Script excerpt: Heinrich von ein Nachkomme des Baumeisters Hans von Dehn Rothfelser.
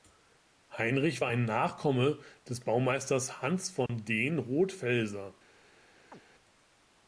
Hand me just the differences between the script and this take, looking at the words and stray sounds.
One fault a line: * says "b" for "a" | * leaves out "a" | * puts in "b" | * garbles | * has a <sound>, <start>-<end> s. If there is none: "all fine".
* says "war" for "von"
* has a dropout, 3.9-3.9 s
* has a chirp, 6.1-6.2 s